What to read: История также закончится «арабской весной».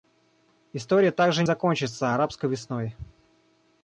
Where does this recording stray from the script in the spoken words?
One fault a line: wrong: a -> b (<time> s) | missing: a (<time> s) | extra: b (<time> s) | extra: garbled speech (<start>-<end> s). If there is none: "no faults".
no faults